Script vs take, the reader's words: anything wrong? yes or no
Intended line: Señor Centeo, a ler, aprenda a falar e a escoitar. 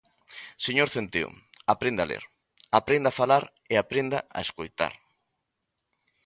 yes